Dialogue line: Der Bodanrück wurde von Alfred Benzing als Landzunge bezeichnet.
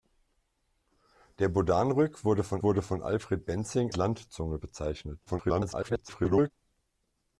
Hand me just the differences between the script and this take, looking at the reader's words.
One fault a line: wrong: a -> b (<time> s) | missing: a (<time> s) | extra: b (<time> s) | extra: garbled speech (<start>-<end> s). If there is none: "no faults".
extra: wurde von (2.6 s)
missing: als (3.9 s)
extra: garbled speech (5.3-6.5 s)